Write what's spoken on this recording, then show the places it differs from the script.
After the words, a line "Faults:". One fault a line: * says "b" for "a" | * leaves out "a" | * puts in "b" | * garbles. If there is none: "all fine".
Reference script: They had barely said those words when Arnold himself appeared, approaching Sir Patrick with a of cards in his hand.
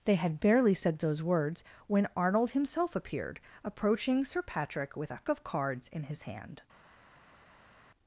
They had barely said those words when Arnold himself appeared, approaching Sir Patrick with a of cards in his hand.
Faults:
all fine